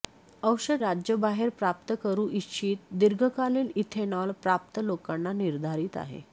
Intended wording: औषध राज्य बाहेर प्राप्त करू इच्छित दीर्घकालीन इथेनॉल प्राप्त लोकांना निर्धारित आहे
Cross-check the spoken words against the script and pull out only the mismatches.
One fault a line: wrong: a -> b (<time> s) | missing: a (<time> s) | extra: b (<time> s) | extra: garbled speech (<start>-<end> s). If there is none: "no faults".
no faults